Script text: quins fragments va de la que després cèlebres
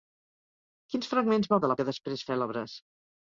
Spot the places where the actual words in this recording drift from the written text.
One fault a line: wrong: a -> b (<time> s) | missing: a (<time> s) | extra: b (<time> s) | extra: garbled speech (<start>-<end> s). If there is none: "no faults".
no faults